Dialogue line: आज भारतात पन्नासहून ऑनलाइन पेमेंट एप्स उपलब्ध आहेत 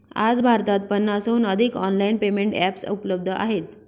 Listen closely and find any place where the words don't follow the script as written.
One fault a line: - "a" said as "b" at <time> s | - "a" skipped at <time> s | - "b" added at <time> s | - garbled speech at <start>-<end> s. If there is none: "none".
- "अधिक" added at 1.5 s